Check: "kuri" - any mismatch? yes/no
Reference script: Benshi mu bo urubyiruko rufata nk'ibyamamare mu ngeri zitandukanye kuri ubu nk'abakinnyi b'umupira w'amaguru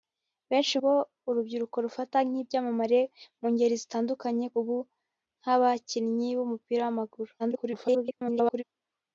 yes